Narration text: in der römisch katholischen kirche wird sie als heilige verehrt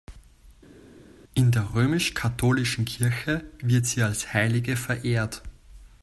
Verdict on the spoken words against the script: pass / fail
pass